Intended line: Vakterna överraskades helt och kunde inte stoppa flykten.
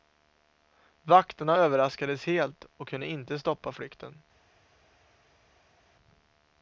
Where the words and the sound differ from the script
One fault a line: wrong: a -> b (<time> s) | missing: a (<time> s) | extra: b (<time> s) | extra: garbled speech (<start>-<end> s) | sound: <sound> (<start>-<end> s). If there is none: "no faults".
no faults